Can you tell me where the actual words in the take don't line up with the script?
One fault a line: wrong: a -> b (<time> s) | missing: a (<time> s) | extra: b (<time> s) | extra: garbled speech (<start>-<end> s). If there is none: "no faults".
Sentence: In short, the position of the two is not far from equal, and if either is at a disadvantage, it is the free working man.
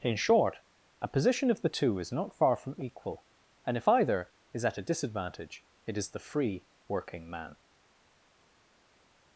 wrong: the -> a (1.0 s)